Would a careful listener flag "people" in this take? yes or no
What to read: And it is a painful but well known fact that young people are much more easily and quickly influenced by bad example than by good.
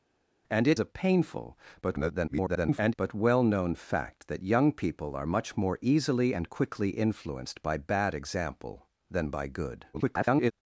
no